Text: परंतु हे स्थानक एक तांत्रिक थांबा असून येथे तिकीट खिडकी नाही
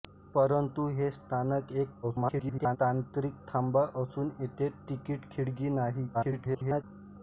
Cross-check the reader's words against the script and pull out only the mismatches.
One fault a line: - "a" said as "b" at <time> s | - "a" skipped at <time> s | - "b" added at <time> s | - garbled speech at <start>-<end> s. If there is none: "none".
- garbled speech at 2.0-2.8 s
- garbled speech at 6.1-6.8 s